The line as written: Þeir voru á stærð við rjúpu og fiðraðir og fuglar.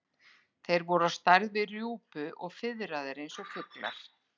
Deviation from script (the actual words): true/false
true